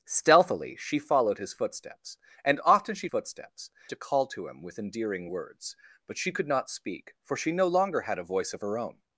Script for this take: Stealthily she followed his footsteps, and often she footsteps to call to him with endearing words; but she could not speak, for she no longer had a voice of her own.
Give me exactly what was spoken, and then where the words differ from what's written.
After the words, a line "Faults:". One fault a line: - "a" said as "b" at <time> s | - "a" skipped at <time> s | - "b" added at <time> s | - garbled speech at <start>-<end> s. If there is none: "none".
Stealthily she followed his footsteps, and often she footsteps to call to him with endearing words; but she could not speak, for she no longer had a voice of her own.
Faults:
none